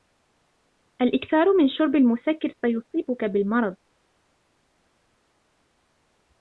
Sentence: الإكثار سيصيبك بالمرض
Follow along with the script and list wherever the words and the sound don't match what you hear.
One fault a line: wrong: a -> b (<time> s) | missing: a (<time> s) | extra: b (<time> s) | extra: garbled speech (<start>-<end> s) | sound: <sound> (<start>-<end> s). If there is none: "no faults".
extra: من شرب المسكر (1.5 s)